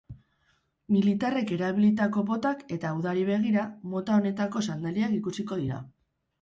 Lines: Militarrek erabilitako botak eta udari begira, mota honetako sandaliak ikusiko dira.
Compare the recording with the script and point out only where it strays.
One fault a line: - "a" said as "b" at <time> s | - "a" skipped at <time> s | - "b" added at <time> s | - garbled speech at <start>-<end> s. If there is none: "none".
none